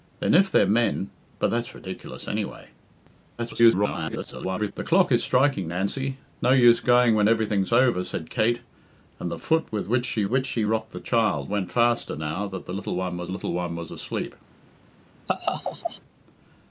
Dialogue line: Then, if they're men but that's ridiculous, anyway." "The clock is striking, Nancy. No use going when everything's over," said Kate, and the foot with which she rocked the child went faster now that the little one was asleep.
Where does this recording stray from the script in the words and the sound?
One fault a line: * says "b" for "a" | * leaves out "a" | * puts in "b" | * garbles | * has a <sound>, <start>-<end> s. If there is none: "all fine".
* garbles
* puts in "which she"
* puts in "little one was"
* has a laugh, 15.3-16.0 s